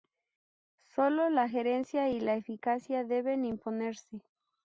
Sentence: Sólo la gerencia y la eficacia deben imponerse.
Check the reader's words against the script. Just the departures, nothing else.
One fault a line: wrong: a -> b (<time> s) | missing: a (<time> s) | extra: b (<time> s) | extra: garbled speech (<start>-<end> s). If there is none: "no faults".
no faults